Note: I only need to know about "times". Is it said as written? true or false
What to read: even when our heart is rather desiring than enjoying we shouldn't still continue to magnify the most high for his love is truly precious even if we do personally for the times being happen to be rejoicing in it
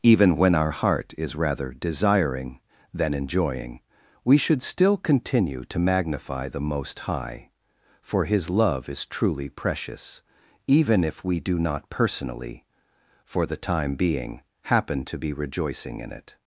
false